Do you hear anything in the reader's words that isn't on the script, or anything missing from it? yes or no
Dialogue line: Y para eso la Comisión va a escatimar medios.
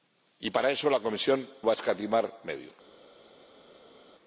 no